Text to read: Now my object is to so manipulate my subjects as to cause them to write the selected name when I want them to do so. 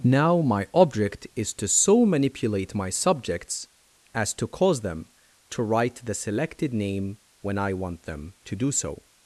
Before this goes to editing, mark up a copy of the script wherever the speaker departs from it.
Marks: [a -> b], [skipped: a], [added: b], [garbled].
Now my object is to so manipulate my subjects as to cause them to write the selected name when I want them to do so.